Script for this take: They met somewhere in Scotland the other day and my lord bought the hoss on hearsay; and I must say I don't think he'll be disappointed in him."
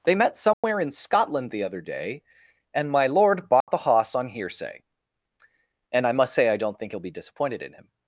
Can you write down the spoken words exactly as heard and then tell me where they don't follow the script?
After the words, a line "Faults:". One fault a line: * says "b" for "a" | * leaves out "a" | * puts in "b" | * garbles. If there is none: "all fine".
They met somewhere in Scotland the other day and my lord bought the hoss on hearsay; and I must say I don't think he'll be disappointed in him."
Faults:
all fine